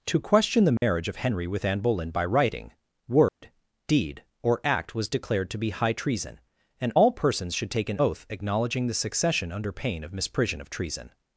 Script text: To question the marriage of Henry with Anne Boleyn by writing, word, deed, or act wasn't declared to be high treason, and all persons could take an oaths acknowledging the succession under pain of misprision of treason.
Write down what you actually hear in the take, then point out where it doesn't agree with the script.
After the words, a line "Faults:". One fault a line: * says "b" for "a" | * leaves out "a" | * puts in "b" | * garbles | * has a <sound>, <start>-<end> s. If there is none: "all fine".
To question the marriage of Henry with Anne Boleyn by writing, word, deed, or act was declared to be high treason, and all persons should take an oath acknowledging the succession under pain of misprision of treason.
Faults:
* has a dropout, 0.8-0.8 s
* has a dropout, 3.3-3.4 s
* says "was" for "wasn't"
* says "should" for "could"
* says "oath" for "oaths"